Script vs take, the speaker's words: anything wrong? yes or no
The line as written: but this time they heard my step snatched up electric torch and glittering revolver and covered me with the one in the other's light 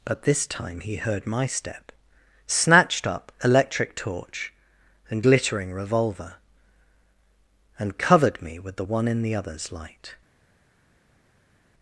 yes